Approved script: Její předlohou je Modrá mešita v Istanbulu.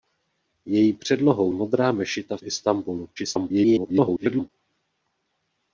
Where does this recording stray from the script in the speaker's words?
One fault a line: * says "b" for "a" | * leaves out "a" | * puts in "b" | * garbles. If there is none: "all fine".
* leaves out "je"
* garbles